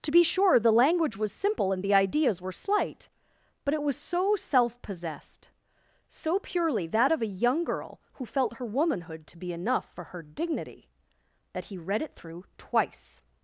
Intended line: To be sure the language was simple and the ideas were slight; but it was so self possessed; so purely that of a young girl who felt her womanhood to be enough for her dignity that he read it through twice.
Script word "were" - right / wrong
right